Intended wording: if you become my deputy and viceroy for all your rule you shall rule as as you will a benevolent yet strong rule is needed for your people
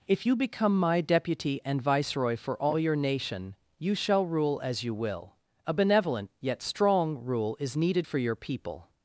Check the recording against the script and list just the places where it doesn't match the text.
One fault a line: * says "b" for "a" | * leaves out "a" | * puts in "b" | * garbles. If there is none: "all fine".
* says "nation" for "rule"
* leaves out "as"